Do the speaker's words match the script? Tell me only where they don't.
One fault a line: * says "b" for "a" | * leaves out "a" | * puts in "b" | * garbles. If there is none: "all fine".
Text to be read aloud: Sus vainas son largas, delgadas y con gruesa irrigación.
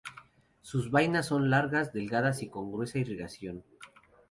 all fine